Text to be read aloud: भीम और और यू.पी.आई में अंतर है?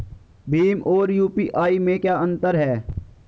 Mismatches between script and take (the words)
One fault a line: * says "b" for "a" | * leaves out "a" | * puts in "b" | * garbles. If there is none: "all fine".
* leaves out "और"
* puts in "क्या"